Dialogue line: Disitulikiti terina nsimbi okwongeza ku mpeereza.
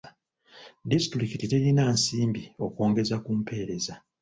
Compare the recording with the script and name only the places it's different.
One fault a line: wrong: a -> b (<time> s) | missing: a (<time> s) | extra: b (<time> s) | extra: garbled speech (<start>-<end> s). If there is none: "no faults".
no faults